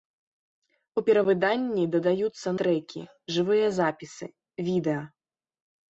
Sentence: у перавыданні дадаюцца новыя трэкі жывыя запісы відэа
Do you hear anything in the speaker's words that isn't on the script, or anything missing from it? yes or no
yes